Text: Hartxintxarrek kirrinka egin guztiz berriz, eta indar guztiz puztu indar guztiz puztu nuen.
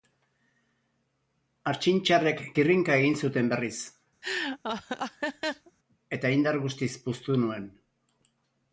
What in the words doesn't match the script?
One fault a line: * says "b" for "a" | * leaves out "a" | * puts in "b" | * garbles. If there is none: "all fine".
* says "zuten" for "guztiz"
* leaves out "indar guztiz puztu"